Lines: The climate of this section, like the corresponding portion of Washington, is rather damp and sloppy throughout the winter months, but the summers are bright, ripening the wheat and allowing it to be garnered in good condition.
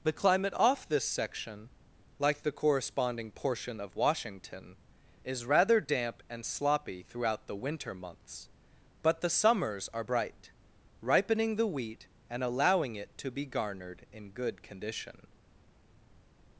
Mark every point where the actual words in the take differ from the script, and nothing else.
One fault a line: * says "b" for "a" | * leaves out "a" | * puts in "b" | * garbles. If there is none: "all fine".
* says "off" for "of"